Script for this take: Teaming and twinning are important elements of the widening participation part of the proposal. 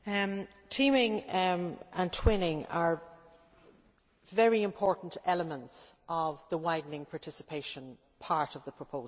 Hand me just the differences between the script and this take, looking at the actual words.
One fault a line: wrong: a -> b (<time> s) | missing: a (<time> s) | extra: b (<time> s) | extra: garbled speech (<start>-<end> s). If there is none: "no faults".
extra: very (4.2 s)